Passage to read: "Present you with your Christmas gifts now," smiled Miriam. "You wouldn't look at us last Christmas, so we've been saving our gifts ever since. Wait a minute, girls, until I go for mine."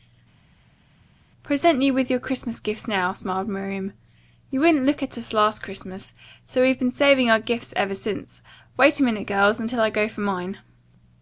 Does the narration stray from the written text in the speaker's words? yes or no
no